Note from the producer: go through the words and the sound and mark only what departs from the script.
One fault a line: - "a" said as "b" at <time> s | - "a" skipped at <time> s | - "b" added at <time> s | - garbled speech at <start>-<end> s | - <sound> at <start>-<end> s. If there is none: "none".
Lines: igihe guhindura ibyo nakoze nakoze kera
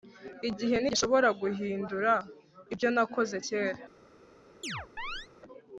- "ntigishobora" added at 0.8 s
- "nakoze" skipped at 3.4 s
- chirp at 4.6-5.3 s